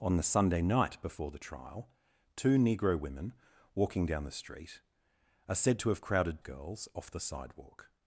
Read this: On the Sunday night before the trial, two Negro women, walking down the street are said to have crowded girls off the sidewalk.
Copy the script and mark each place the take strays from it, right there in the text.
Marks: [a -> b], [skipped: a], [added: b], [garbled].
On the Sunday night before the trial, two Negro women, walking down the street are said to have crowded girls off the sidewalk.